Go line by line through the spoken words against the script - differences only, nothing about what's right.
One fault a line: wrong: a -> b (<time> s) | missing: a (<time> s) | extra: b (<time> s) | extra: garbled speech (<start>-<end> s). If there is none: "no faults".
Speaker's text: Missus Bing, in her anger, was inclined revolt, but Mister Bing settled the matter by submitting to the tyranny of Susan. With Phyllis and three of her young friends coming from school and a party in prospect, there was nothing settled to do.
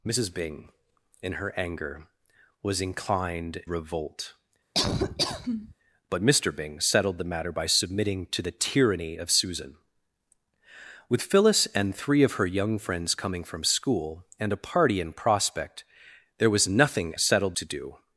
no faults